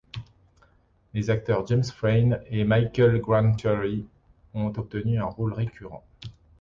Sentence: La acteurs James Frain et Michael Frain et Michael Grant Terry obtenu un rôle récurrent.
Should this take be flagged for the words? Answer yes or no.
yes